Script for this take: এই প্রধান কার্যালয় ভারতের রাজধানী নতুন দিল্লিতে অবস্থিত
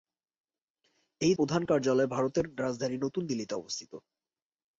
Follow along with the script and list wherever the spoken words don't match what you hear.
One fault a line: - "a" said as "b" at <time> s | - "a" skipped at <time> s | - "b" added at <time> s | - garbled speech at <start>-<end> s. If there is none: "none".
none